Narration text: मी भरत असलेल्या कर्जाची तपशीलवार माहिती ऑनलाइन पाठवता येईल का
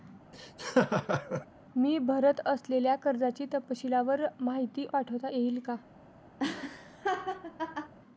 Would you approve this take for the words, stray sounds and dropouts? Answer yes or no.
no